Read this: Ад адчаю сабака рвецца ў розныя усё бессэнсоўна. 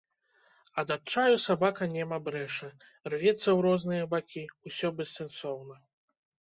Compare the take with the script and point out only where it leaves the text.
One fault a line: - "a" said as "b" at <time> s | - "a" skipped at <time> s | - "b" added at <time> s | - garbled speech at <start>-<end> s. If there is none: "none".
- "нема брэша" added at 2.0 s
- "бакі" added at 4.2 s